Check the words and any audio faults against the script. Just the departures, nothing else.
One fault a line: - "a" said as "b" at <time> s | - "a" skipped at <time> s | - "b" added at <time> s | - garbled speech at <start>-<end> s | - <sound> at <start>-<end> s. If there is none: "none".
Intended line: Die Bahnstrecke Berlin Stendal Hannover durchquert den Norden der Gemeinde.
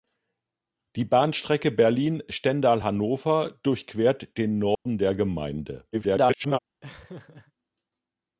- dropout at 4.7-4.9 s
- garbled speech at 5.9-6.6 s
- laugh at 6.8-7.5 s